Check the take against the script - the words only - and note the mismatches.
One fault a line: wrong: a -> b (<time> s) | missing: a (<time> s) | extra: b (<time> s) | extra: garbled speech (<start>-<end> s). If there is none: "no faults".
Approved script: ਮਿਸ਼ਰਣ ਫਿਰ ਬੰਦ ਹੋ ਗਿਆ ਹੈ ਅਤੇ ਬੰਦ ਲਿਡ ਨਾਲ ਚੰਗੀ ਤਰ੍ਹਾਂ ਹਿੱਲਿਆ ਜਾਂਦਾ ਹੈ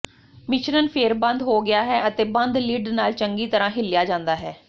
no faults